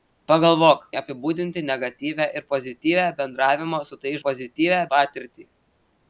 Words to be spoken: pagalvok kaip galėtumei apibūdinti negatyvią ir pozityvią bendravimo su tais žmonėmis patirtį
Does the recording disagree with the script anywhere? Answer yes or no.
yes